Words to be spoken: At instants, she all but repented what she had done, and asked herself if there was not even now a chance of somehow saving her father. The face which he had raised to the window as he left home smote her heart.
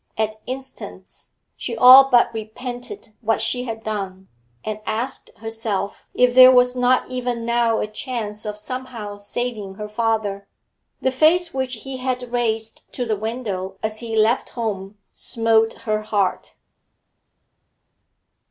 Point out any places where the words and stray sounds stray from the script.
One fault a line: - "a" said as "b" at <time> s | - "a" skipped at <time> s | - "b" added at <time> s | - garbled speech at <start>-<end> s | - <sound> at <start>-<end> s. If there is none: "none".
none